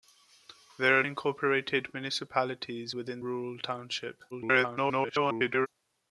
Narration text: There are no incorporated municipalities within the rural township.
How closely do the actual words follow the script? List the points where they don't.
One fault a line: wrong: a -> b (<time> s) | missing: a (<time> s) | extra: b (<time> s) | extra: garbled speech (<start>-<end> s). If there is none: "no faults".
missing: no (1.0 s)
missing: the (3.2 s)
extra: garbled speech (4.3-5.7 s)